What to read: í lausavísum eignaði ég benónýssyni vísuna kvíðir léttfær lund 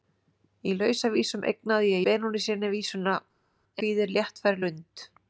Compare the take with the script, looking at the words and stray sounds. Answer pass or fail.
pass